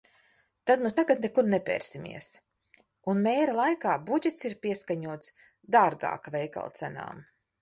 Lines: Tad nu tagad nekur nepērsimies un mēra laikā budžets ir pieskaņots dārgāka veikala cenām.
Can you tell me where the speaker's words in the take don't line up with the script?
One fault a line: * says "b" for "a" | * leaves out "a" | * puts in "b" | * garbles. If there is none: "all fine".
all fine